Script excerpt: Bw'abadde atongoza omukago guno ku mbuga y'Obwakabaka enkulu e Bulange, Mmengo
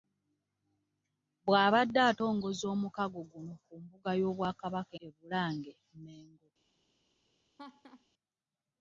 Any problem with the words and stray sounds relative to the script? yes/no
yes